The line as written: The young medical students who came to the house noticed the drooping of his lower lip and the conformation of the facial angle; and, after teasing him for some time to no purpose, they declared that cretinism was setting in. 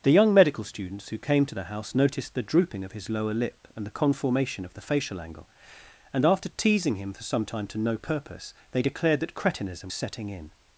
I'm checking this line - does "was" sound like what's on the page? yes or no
no